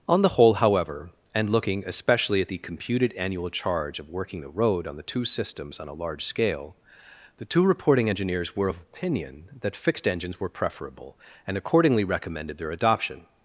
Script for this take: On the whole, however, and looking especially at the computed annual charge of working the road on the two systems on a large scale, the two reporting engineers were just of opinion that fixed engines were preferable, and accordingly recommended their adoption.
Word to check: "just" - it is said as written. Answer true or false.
false